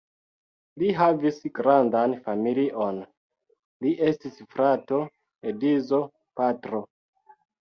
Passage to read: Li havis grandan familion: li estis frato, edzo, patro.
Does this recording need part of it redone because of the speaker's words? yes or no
no